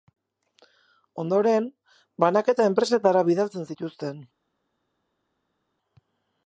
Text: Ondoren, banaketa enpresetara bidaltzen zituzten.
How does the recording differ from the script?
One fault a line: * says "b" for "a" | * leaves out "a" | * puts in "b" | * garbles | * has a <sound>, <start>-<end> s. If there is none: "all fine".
all fine